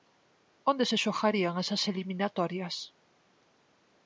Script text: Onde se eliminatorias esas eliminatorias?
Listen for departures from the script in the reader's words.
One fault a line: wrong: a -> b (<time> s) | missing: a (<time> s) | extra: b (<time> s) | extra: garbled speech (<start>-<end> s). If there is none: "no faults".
wrong: eliminatorias -> xogarían (1.0 s)